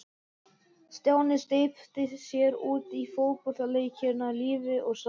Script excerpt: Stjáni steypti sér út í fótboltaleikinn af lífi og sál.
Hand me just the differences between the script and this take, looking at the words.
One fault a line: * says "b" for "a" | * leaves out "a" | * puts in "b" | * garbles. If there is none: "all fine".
all fine